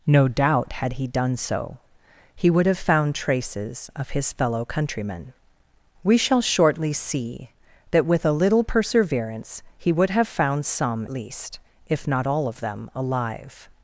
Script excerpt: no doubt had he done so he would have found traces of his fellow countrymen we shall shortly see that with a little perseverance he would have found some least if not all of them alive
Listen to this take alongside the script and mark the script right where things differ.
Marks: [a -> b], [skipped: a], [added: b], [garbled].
no doubt had he done so he would have found traces of his fellow countrymen we shall shortly see that with a little perseverance he would have found some least if not all of them alive